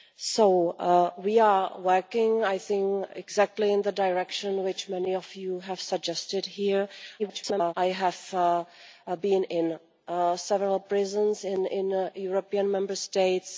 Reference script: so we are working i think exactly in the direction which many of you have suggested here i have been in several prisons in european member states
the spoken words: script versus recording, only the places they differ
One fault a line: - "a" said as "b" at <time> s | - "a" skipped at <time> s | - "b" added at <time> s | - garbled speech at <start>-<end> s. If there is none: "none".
- garbled speech at 7.2-7.7 s